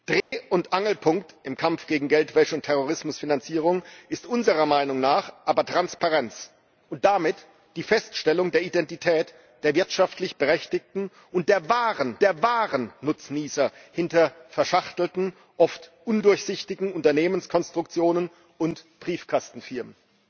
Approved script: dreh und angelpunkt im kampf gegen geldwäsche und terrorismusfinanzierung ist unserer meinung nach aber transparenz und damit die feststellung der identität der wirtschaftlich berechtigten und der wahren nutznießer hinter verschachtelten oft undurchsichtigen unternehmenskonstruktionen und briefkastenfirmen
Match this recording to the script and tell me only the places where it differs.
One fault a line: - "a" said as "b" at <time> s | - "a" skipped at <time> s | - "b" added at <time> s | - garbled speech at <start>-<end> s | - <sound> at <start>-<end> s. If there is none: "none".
- dropout at 0.2-0.3 s
- "der wahren" added at 12.2 s